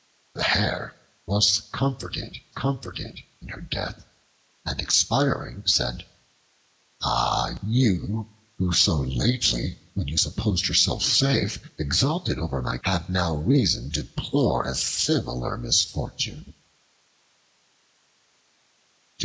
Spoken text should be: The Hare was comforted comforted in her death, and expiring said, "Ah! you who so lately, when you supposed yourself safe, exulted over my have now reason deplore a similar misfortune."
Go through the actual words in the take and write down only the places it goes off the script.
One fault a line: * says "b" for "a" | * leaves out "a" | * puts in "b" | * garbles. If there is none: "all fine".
all fine